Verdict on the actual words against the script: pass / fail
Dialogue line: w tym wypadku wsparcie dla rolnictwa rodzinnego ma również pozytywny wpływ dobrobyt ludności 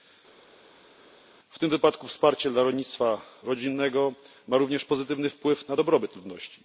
fail